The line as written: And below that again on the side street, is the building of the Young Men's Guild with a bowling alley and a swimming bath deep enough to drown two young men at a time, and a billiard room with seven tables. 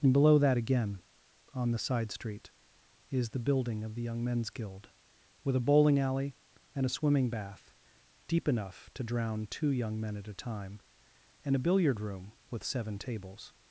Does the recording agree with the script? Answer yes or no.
yes